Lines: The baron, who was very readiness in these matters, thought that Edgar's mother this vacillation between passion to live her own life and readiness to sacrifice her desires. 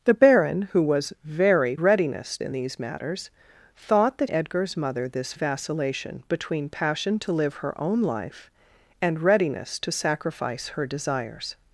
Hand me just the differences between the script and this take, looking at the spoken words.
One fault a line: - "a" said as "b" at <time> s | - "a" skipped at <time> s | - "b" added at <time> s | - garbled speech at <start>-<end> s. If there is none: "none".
none